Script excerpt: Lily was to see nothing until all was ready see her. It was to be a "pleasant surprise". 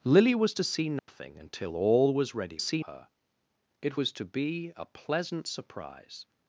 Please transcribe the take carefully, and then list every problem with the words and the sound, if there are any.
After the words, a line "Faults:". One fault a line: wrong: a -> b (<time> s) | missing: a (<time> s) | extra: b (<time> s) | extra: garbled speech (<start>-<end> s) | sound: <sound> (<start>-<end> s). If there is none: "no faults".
Lily was to see nothing until all was ready see her. It was to be a "pleasant surprise".
Faults:
sound: dropout (1.0-1.1 s)